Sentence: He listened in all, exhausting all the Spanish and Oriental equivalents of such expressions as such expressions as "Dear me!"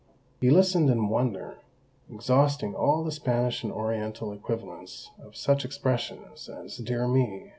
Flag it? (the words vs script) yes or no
yes